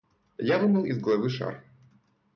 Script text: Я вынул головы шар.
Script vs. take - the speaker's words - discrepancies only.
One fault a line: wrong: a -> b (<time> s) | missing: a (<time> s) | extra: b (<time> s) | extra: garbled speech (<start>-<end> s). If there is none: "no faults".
extra: из (0.8 s)